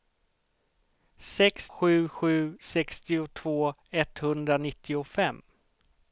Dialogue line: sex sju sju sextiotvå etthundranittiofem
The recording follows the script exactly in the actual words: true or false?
true